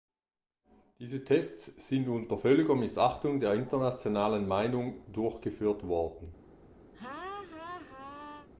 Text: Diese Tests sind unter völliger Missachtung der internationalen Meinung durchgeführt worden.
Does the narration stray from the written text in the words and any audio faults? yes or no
yes